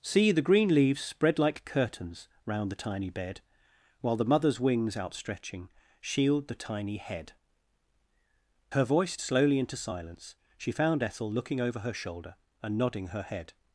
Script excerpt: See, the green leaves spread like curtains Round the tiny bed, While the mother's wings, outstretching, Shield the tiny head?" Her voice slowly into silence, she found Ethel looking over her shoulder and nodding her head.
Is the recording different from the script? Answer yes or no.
no